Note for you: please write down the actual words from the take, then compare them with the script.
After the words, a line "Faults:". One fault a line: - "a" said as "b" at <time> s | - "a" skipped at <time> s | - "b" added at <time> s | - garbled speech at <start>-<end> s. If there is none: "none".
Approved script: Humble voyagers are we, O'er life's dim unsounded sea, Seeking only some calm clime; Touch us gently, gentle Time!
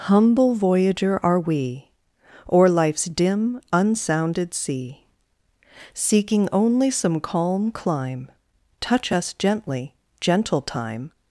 Humble voyager are we, O'er life's dim unsounded sea, Seeking only some calm clime; Touch us gently, gentle Time!
Faults:
- "voyagers" said as "voyager" at 0.6 s